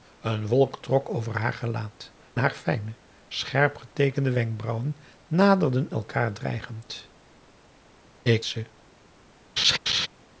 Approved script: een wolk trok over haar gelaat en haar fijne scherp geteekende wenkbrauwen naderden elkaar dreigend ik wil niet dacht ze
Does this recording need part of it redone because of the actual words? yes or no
yes